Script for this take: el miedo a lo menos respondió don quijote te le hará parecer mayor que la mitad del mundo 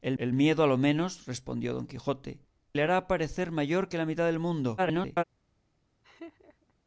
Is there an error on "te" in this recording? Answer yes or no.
yes